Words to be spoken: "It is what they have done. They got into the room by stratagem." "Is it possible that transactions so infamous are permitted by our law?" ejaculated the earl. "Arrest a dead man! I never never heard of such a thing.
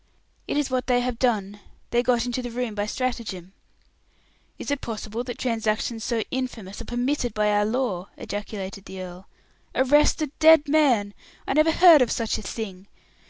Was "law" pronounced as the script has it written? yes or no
yes